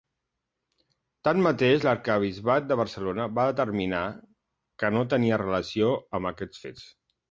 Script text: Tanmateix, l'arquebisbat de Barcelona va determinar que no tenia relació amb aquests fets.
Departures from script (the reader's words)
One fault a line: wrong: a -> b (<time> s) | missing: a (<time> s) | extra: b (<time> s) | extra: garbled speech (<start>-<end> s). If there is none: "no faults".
no faults